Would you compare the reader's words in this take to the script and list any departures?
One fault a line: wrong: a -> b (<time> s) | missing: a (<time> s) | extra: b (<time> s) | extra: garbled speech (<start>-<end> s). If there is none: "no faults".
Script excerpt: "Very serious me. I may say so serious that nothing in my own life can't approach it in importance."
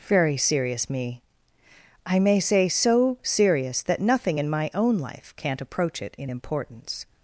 no faults